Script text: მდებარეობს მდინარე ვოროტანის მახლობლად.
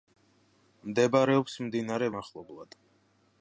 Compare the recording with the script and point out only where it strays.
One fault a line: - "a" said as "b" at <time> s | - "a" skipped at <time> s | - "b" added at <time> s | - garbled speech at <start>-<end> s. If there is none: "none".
- "ვოროტანის" skipped at 2.1 s